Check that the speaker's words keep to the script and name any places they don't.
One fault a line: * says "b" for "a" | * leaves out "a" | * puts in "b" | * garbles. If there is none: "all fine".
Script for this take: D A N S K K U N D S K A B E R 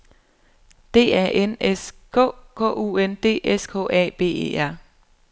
all fine